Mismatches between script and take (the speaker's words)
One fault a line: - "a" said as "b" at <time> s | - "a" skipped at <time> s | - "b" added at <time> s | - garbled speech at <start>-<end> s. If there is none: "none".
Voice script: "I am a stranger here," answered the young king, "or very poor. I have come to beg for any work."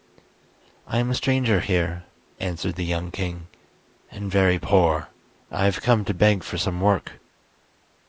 - "or" said as "and" at 4.1 s
- "any" said as "some" at 6.6 s